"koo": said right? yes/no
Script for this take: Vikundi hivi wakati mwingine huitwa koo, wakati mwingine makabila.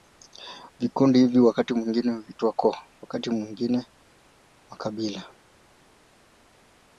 yes